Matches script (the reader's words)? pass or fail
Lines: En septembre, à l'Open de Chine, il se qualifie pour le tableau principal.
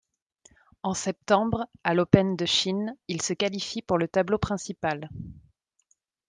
pass